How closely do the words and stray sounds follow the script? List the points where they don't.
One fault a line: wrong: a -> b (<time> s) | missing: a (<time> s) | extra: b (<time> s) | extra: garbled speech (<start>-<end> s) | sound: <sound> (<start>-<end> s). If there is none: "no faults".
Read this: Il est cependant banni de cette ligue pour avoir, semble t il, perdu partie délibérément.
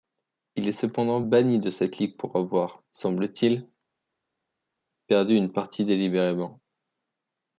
extra: une (5.4 s)